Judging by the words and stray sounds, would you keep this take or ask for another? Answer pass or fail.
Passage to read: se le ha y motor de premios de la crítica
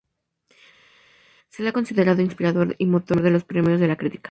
fail